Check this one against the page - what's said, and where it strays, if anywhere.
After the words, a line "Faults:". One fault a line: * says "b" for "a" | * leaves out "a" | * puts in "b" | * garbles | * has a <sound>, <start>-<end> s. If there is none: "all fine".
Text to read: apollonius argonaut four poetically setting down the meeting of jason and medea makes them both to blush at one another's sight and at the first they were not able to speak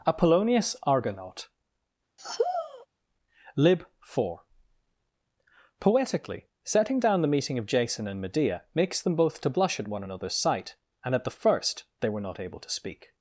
apollonius argonaut lib four poetically setting down the meeting of jason and medea makes them both to blush at one another's sight and at the first they were not able to speak
Faults:
* has a sigh, 2.2-2.9 s
* puts in "lib"